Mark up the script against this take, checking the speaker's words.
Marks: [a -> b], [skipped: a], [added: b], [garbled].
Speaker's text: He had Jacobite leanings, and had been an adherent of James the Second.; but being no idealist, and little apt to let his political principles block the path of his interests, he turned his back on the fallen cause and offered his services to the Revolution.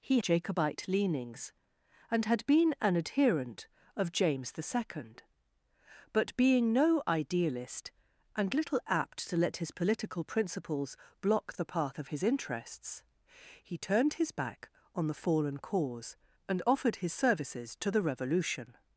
He [skipped: had] Jacobite leanings, and had been an adherent of James the Second.; but being no idealist, and little apt to let his political principles block the path of his interests, he turned his back on the fallen cause and offered his services to the Revolution.